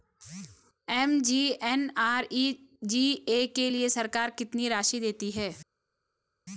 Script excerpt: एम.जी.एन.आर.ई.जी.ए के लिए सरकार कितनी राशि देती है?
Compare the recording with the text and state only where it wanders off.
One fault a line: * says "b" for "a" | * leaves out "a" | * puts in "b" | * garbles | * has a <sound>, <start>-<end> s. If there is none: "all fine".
all fine